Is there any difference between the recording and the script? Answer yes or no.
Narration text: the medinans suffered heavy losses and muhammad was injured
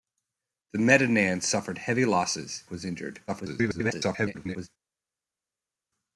yes